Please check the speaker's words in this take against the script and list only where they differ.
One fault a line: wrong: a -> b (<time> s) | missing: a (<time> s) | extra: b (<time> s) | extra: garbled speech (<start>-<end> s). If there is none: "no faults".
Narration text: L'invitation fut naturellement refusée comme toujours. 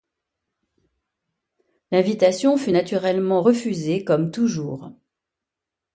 no faults